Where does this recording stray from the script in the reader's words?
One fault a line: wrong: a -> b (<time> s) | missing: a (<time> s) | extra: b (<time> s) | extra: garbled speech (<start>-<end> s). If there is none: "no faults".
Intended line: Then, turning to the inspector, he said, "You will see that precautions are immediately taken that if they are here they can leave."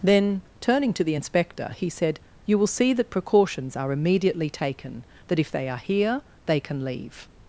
no faults